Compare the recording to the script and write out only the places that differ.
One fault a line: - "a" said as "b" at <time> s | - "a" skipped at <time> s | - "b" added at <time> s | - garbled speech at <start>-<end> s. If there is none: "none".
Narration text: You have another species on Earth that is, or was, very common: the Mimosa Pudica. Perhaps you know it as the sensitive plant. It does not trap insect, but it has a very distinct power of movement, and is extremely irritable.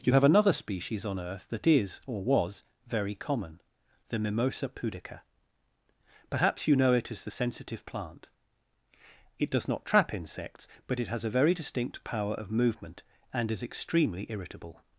- "insect" said as "insects" at 10.1 s